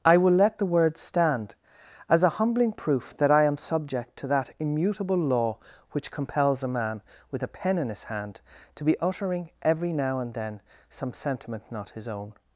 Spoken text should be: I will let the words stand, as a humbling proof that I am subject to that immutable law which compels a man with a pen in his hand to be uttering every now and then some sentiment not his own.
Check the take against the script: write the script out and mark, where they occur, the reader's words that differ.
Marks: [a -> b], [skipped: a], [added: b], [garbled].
I will let the words stand, as a humbling proof that I am subject to that immutable law which compels a man with a pen in his hand to be uttering every now and then some sentiment not his own.